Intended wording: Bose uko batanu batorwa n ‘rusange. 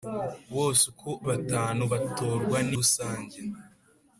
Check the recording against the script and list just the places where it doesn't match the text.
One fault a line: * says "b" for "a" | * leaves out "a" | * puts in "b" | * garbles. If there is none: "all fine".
all fine